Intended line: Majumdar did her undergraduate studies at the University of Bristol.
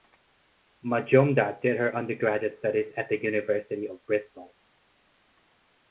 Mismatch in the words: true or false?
false